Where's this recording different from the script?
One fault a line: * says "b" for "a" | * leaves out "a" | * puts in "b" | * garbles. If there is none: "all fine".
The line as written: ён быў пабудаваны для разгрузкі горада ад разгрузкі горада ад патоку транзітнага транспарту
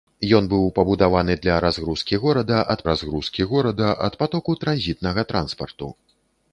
all fine